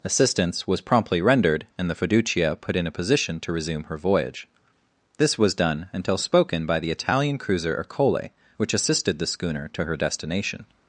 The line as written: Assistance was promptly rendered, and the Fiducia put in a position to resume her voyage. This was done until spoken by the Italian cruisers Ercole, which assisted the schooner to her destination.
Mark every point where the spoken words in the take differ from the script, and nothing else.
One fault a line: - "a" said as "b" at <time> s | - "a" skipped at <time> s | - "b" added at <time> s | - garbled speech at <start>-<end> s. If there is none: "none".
- "cruisers" said as "cruiser" at 7.4 s